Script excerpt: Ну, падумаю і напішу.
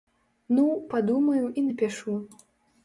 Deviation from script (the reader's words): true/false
false